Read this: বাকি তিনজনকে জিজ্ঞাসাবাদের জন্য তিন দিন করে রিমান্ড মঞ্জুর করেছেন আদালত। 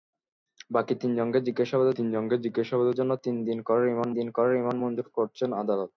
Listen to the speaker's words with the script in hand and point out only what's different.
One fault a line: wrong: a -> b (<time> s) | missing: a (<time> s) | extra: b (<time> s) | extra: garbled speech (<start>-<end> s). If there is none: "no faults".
extra: তিনজনকে জিজ্ঞাসাবাদের (2.0 s)
extra: দিন করে রিমান্ড (4.2 s)